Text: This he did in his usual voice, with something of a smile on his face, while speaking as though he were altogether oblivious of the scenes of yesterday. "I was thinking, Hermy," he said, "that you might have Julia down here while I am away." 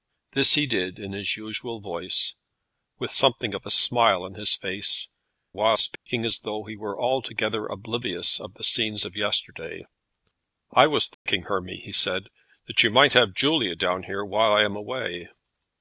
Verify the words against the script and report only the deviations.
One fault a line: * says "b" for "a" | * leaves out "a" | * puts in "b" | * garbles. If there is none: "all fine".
all fine